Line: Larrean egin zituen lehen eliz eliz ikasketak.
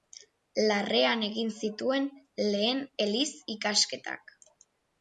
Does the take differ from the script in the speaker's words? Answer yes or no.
yes